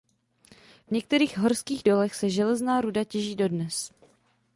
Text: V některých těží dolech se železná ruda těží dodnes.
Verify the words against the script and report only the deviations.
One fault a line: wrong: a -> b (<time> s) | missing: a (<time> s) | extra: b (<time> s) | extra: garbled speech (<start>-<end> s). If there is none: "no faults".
wrong: těží -> horských (1.4 s)